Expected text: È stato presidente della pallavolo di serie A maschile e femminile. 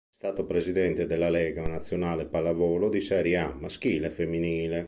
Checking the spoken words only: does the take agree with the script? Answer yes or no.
no